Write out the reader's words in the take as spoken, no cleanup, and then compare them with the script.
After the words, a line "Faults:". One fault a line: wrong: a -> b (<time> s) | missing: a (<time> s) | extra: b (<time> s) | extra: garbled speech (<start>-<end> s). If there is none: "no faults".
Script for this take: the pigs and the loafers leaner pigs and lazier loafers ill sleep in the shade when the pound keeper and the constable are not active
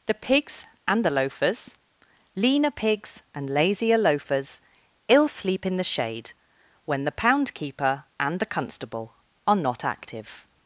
the pigs and the loafers leaner pigs and lazier loafers ill sleep in the shade when the pound keeper and the constable are not active
Faults:
no faults